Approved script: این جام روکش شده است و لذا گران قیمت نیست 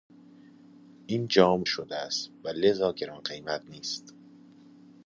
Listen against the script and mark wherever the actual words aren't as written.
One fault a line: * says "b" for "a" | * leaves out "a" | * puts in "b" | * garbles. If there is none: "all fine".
* leaves out "روکش"